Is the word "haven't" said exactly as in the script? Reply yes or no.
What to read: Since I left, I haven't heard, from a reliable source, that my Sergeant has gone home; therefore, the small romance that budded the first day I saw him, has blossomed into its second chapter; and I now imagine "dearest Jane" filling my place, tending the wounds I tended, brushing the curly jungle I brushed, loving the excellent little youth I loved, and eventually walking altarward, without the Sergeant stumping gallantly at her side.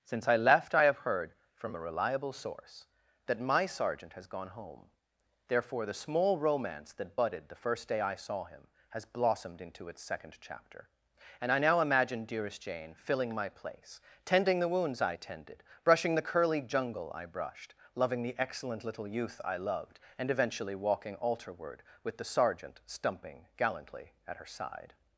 no